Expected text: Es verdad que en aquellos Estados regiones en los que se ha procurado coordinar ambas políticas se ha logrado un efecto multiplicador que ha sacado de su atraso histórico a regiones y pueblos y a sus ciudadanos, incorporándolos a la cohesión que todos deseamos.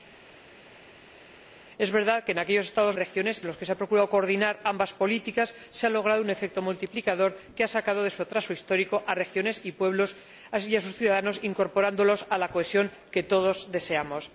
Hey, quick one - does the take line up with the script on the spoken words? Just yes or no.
yes